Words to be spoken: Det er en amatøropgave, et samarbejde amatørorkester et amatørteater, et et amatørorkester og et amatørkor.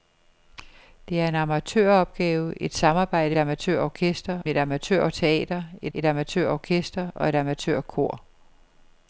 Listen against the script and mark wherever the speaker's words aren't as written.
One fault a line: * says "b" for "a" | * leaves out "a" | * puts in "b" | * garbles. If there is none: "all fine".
all fine